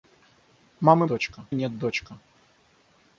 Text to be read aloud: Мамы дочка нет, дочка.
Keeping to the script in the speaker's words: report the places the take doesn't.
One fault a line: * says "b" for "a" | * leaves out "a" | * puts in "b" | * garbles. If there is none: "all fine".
all fine